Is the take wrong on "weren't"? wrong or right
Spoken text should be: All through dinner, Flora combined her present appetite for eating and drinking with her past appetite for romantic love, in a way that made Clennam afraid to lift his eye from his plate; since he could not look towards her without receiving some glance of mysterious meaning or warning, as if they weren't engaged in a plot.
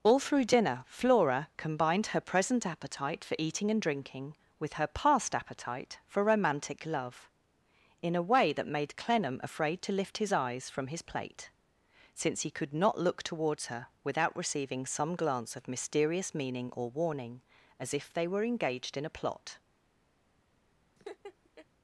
wrong